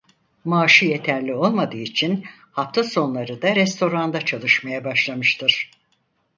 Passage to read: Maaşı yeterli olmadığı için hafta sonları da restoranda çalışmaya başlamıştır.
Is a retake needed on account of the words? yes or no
no